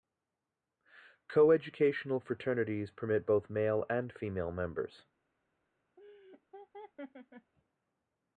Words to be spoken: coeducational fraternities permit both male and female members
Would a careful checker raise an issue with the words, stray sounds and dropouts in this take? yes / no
yes